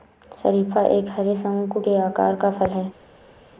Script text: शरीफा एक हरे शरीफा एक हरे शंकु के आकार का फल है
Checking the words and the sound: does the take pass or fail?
fail